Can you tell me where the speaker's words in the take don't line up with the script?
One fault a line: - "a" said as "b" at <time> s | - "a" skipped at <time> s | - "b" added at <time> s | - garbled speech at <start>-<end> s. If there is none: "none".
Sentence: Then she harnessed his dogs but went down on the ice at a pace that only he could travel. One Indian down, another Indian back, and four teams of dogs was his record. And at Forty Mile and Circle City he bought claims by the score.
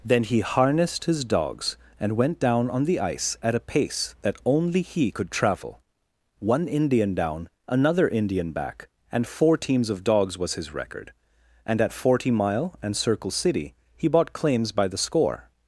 - "she" said as "he" at 0.2 s
- "but" said as "and" at 2.0 s